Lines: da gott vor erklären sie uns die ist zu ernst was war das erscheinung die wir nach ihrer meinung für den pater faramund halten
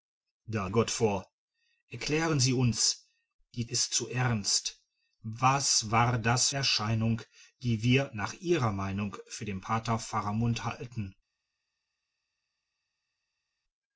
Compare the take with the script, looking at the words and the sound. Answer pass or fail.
pass